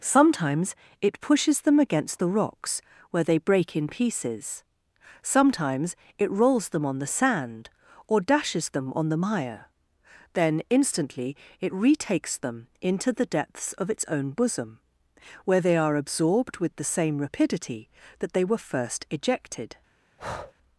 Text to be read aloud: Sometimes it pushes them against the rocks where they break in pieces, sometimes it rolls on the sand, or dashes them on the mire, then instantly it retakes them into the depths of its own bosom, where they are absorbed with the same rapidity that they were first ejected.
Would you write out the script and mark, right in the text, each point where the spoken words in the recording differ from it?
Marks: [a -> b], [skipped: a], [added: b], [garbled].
Sometimes it pushes them against the rocks where they break in pieces, sometimes it rolls [added: them] on the sand, or dashes them on the mire, then instantly it retakes them into the depths of its own bosom, where they are absorbed with the same rapidity that they were first ejected.